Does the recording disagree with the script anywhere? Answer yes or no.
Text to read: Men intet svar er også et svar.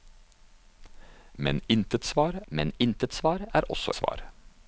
yes